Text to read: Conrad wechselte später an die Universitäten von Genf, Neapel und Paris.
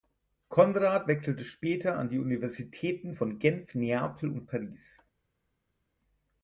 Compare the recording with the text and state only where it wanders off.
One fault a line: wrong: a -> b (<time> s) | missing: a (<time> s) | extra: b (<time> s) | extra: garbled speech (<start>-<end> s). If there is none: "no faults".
no faults